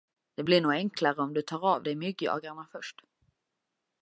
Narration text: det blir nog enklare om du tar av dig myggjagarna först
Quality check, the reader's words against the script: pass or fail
pass